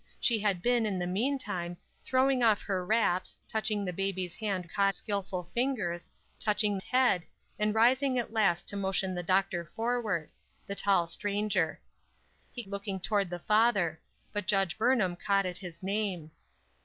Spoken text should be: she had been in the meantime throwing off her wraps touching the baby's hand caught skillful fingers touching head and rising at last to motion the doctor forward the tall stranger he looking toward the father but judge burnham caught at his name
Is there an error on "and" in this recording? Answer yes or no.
no